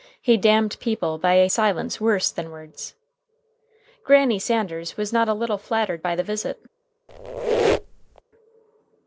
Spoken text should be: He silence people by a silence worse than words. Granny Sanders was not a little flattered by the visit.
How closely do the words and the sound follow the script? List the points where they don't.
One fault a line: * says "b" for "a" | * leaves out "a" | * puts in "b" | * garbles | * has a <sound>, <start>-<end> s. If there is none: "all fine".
* says "damned" for "silence"
* has a squeak, 7.1-8.2 s